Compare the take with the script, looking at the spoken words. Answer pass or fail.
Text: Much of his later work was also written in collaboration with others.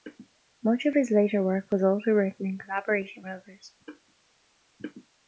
pass